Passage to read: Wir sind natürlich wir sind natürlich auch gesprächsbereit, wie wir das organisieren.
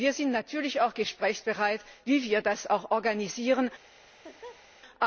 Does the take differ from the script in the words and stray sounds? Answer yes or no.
yes